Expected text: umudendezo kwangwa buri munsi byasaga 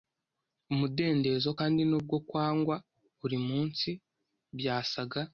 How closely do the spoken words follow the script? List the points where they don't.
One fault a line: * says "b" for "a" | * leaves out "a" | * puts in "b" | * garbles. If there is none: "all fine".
* puts in "kandi nubwo"